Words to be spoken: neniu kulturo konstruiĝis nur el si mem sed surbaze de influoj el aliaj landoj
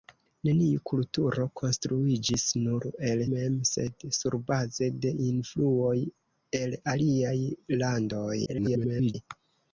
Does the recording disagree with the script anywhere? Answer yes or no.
yes